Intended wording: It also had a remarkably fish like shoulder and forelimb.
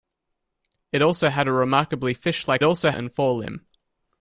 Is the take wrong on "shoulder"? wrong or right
wrong